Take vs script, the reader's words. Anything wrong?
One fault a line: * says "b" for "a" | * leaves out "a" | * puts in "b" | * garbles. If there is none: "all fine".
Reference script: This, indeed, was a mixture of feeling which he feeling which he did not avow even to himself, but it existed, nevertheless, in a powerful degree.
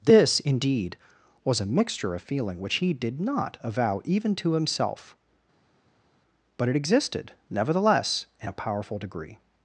* leaves out "feeling which he"